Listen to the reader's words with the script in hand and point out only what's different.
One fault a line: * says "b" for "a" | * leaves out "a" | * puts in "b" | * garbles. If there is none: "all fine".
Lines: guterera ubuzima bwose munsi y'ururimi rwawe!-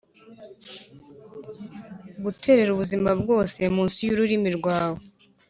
all fine